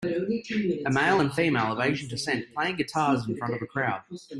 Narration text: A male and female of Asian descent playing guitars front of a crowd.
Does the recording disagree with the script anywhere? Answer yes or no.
yes